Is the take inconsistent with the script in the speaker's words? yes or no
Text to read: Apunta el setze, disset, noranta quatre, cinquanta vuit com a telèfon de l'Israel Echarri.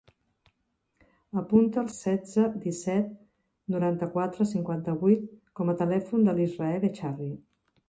no